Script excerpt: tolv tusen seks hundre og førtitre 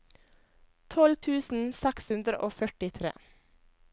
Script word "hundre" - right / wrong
right